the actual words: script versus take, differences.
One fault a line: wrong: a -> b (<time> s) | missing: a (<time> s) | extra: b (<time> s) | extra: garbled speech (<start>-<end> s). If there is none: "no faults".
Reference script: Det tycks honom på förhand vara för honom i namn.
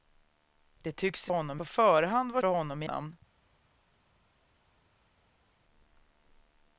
no faults